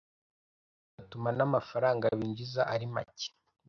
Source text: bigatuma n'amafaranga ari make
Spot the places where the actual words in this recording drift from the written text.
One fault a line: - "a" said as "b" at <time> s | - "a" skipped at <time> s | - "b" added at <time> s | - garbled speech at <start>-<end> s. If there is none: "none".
- "binjiza" added at 2.2 s